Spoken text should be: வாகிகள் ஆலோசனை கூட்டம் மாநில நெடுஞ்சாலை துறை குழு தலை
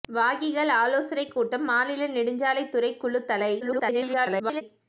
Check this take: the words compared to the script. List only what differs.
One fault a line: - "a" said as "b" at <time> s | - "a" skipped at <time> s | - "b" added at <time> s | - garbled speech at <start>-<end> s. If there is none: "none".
- garbled speech at 3.6-4.6 s